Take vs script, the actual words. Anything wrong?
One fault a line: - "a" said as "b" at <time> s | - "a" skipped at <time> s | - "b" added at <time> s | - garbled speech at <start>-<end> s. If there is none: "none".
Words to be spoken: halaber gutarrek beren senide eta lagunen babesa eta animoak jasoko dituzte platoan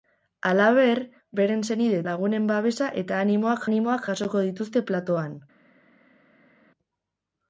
- "gutarrek" skipped at 1.0 s
- "eta" skipped at 2.0 s
- "animoak" added at 3.7 s